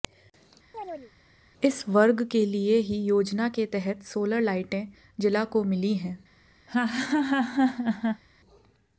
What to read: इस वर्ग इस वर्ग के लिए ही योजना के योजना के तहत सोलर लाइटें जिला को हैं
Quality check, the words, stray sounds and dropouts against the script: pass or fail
fail